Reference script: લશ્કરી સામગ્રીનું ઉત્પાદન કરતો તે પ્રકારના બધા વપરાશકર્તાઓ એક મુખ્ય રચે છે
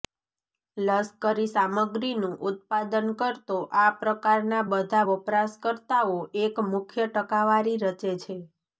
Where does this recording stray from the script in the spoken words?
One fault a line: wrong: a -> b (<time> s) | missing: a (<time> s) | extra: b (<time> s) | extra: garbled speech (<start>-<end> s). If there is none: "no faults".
wrong: તે -> આ (3.8 s)
extra: ટકાવારી (7.1 s)